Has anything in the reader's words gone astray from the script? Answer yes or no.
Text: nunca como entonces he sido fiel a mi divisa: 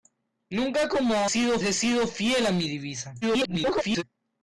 yes